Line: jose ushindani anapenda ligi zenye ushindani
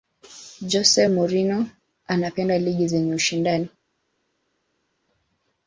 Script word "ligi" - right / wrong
right